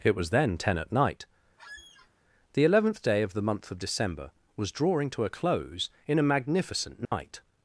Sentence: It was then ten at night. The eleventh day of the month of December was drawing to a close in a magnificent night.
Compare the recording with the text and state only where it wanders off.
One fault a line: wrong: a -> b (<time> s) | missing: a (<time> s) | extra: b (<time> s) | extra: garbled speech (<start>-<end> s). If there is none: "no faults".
no faults